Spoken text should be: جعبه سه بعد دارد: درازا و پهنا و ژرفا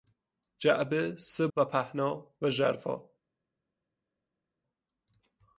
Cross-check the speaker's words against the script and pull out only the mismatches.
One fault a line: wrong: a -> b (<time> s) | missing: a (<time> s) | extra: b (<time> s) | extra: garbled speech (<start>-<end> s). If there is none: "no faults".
missing: بعد دارد درازا (1.5 s)